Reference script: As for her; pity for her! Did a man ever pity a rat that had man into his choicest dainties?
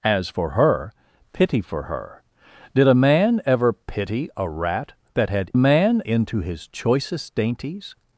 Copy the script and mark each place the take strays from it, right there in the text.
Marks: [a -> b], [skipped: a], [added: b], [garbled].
As for her; pity for her! Did a man ever pity a rat that had man into his choicest dainties?